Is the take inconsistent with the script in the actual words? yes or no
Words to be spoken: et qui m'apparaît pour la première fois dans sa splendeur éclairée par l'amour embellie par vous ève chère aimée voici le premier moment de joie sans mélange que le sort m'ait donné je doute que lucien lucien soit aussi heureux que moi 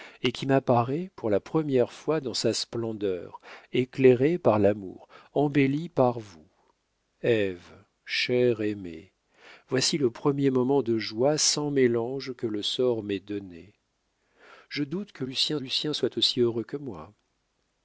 no